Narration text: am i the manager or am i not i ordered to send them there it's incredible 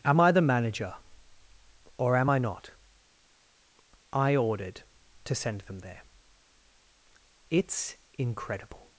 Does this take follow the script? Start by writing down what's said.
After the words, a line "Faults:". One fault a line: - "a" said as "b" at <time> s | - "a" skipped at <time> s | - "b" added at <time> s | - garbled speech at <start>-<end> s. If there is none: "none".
am i the manager or am i not i ordered to send them there it's incredible
Faults:
none